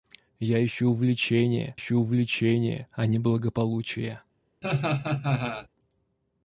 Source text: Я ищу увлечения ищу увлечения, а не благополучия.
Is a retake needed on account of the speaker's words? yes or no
no